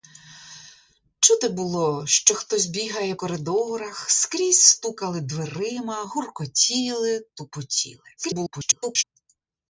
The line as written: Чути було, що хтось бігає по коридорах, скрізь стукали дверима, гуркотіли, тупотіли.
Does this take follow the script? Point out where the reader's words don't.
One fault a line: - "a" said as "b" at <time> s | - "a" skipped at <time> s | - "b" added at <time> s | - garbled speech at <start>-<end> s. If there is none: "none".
- "по" skipped at 3.1 s
- garbled speech at 8.2-9.0 s